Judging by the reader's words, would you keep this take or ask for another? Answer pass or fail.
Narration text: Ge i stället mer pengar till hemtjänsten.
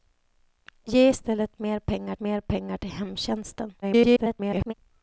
fail